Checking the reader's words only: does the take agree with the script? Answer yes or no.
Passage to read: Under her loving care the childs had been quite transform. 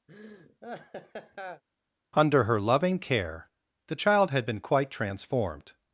no